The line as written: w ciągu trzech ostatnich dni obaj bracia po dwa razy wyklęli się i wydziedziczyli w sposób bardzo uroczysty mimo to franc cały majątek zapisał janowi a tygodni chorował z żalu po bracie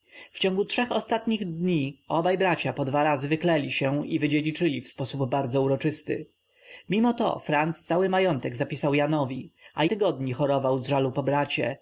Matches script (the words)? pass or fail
pass